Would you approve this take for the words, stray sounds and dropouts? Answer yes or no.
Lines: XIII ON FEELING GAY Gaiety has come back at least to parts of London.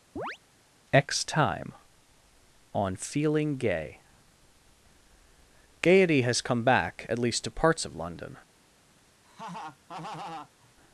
no